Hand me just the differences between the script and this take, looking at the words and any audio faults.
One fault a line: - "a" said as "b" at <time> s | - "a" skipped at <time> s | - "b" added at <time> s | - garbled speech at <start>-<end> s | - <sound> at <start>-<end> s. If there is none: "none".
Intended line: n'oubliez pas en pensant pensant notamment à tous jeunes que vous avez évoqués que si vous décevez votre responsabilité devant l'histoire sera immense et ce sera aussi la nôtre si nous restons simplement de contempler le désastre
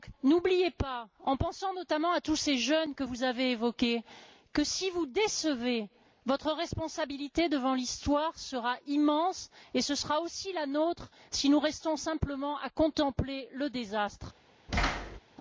- "pensant" skipped at 1.7 s
- "ces" added at 2.4 s
- "de" said as "à" at 12.6 s
- thud at 14.7-15.2 s